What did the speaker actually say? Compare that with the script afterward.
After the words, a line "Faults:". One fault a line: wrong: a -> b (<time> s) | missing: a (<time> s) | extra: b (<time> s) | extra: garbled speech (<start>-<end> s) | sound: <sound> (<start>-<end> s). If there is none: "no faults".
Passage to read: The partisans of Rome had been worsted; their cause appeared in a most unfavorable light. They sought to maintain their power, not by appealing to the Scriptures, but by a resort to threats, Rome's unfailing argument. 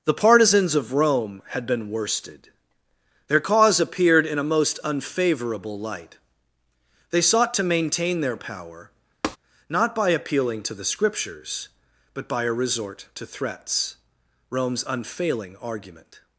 The partisans of Rome had been worsted; their cause appeared in a most unfavorable light. They sought to maintain their power, not by appealing to the Scriptures, but by a resort to threats, Rome's unfailing argument.
Faults:
sound: tap (9.2-9.4 s)